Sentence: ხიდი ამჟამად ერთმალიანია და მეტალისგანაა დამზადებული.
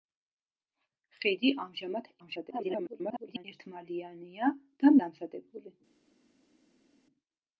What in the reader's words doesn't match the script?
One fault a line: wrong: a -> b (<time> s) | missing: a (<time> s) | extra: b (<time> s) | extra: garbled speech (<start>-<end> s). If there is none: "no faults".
extra: garbled speech (2.2-3.4 s)
missing: მეტალისგანაა (4.9 s)